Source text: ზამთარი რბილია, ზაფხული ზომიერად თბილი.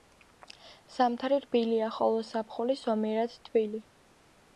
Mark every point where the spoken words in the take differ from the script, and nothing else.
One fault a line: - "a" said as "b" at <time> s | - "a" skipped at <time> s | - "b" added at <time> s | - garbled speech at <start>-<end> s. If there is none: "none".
- "ხოლო" added at 1.9 s